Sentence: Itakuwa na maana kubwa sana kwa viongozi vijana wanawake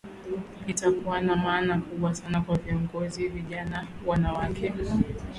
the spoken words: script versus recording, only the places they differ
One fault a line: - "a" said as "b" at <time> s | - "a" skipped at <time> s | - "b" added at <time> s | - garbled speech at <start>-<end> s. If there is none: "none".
none